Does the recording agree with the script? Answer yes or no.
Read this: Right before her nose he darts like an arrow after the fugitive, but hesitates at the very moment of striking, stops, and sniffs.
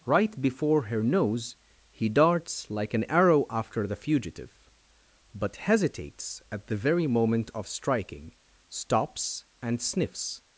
yes